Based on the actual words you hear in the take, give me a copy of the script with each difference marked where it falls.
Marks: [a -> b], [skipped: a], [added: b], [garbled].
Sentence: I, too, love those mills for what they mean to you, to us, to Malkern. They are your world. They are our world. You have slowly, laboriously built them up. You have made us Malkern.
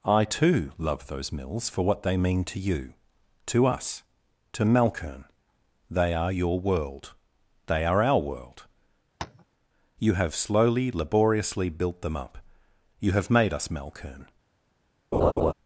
I, too, love those mills for what they mean to you, to us, to Malkern. They are your world. They are our world. You have slowly, laboriously built them up. You have made us Malkern.